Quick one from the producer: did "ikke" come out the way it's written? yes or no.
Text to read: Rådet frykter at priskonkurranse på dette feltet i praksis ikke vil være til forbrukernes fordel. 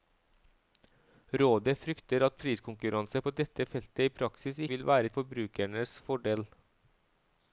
no